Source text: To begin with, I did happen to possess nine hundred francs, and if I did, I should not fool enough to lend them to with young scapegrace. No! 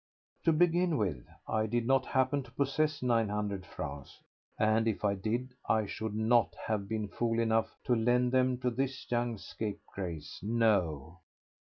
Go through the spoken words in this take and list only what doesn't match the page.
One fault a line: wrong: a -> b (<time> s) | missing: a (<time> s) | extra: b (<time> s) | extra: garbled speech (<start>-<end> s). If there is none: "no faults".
extra: not (1.9 s)
extra: have been (6.7 s)
wrong: with -> this (8.7 s)